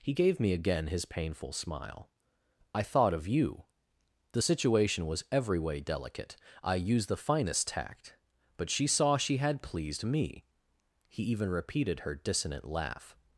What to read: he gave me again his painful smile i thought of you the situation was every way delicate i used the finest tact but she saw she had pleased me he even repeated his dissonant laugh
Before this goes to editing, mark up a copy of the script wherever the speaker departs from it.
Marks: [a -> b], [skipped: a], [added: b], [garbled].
he gave me again his painful smile i thought of you the situation was every way delicate i used the finest tact but she saw she had pleased me he even repeated [his -> her] dissonant laugh